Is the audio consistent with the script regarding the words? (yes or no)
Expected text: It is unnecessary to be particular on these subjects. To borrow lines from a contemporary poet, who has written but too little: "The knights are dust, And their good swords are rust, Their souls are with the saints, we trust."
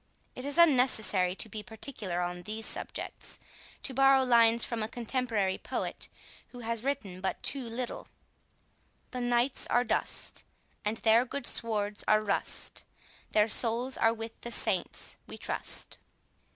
yes